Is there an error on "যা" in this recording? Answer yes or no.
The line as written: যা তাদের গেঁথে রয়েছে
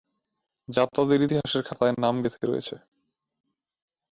no